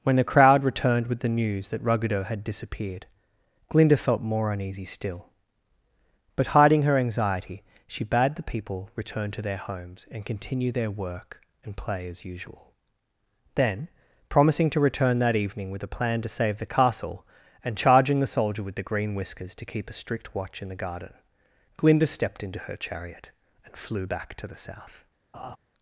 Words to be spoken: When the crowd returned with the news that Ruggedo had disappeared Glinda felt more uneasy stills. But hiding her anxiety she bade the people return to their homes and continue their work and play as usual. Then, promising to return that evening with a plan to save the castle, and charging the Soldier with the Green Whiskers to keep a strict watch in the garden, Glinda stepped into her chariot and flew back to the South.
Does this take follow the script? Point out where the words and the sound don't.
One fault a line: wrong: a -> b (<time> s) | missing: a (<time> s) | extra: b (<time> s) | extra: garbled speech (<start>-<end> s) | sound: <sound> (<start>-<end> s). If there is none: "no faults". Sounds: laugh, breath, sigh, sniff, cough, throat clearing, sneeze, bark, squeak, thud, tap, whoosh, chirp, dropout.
wrong: stills -> still (4.8 s)
sound: laugh (25.3-25.6 s)